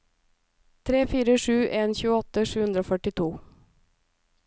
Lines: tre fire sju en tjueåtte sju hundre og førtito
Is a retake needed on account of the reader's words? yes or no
no